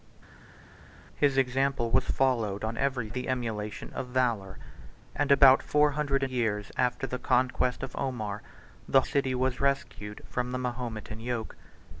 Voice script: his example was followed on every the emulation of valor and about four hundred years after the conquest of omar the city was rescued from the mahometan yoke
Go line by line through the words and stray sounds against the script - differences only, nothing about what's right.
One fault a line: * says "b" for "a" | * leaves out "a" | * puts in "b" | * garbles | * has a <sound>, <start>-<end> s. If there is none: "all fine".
all fine